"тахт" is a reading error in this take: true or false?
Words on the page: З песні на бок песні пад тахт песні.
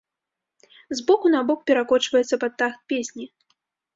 false